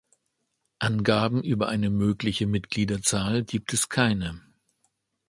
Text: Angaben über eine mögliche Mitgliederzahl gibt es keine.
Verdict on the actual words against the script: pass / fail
pass